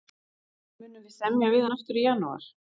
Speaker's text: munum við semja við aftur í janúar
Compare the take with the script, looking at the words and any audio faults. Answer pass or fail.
fail